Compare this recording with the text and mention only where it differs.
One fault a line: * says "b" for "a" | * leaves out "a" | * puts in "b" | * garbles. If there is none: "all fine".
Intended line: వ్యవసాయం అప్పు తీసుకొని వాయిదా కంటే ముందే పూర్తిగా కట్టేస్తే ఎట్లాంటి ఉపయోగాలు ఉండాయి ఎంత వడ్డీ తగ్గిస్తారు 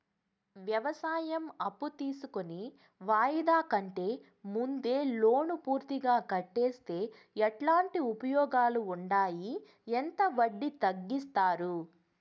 * puts in "లోను"